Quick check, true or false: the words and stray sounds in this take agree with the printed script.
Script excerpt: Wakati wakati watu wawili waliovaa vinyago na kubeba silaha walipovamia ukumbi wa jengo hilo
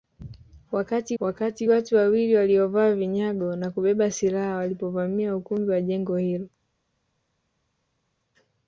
true